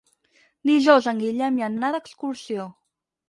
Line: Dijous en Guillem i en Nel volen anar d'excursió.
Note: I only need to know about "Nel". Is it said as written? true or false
false